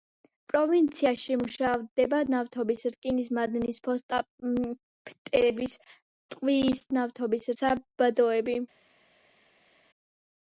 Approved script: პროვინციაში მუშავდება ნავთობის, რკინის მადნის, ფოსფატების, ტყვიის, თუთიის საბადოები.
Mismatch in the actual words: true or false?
true